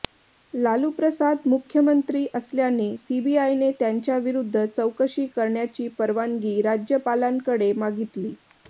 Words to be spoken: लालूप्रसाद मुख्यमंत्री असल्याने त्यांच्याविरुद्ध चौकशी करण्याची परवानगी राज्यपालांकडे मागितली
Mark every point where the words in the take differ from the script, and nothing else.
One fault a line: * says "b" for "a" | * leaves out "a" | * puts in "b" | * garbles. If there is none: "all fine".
* puts in "सीबीआयने"